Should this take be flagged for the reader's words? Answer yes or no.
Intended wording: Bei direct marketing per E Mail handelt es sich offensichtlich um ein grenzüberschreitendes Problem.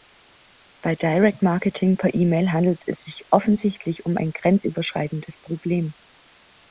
no